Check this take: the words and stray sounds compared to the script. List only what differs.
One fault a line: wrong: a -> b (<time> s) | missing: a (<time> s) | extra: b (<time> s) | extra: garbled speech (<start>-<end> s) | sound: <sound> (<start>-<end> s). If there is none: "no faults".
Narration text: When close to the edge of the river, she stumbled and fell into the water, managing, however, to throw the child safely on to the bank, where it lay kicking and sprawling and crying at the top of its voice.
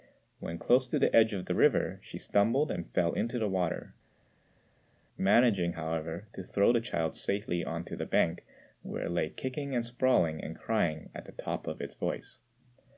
no faults